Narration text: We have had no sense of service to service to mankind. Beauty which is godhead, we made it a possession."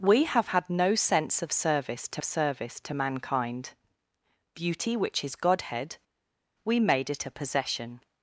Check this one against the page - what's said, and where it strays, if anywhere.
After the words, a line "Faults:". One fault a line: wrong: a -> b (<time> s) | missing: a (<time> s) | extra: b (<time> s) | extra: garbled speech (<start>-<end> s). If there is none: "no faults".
We have had no sense of service to service to mankind. Beauty which is godhead, we made it a possession."
Faults:
no faults